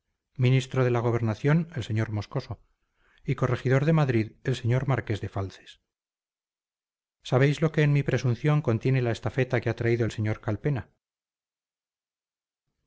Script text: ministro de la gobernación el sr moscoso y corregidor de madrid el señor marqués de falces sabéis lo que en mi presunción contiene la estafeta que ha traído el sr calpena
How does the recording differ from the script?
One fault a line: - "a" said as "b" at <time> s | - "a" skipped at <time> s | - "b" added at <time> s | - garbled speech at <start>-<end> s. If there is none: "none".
none